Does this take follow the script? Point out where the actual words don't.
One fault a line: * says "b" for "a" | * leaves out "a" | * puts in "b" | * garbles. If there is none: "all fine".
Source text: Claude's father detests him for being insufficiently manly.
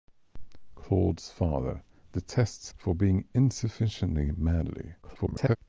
* leaves out "him"
* garbles